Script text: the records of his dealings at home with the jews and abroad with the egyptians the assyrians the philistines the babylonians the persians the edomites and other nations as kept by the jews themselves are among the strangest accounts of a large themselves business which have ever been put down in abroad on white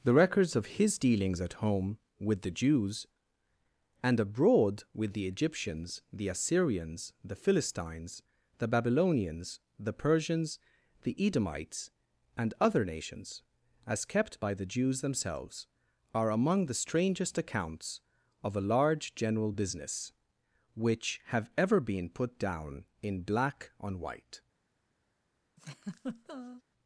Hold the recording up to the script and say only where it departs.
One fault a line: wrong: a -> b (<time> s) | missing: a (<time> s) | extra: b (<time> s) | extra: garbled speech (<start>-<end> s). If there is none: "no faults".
wrong: themselves -> general (19.1 s)
wrong: abroad -> black (23.2 s)